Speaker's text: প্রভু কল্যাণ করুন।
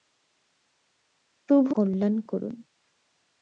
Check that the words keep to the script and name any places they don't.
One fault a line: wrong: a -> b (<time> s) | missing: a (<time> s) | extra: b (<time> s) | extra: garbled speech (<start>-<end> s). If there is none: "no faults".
no faults